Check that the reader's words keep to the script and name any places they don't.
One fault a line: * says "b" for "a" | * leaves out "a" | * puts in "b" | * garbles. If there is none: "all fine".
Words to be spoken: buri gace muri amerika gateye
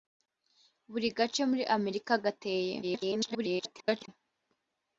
* garbles